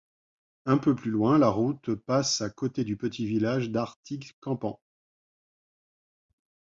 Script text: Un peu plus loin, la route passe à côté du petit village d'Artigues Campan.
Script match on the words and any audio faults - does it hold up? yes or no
yes